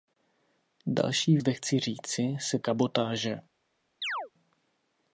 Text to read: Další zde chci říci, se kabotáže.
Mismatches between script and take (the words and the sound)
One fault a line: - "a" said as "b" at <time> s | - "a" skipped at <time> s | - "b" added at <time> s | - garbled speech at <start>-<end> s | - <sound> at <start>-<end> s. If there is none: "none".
- chirp at 4.0-4.3 s